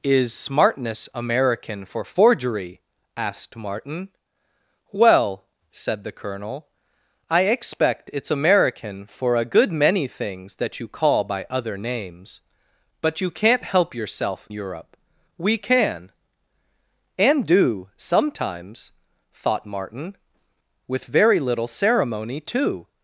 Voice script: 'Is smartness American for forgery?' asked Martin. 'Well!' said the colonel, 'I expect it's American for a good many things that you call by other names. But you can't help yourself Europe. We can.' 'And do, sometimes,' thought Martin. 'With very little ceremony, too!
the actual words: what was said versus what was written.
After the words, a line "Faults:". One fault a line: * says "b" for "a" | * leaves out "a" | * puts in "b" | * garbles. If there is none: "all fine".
'Is smartness American for forgery?' asked Martin. 'Well!' said the colonel, 'I expect it's American for a good many things that you call by other names. But you can't help yourself Europe. We can.' 'And do, sometimes,' thought Martin. 'With very little ceremony, too!
Faults:
all fine